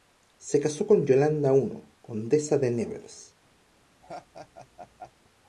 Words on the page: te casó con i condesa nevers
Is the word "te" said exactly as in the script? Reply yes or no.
no